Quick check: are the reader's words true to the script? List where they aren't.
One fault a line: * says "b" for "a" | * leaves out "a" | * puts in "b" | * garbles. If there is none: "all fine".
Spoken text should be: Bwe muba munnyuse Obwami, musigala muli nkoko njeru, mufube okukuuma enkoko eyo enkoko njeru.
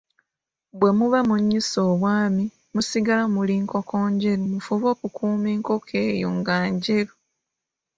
* says "nga" for "enkoko"